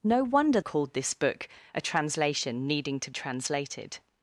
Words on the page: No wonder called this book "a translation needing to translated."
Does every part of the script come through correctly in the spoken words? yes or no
yes